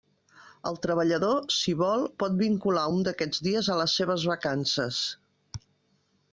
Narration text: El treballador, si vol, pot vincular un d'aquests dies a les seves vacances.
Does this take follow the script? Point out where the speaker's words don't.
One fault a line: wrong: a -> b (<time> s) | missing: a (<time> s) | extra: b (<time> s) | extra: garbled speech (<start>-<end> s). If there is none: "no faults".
no faults